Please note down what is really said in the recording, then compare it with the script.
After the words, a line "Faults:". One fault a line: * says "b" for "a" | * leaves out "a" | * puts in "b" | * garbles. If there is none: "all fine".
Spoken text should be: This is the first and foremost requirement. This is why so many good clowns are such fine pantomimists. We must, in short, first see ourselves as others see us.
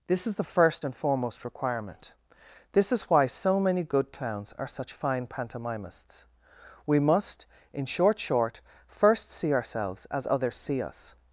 This is the first and foremost requirement. This is why so many good clowns are such fine pantomimists. We must, in short short, first see ourselves as others see us.
Faults:
* puts in "short"